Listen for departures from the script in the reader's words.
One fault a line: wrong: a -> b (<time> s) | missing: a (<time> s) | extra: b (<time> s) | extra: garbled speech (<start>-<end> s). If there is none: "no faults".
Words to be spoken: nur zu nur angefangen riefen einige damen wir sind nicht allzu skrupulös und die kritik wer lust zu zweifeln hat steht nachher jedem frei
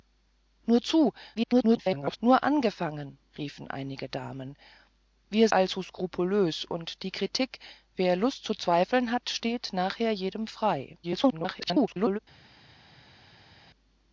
extra: garbled speech (1.3-2.2 s)
missing: sind nicht (5.5 s)
extra: garbled speech (11.0-12.2 s)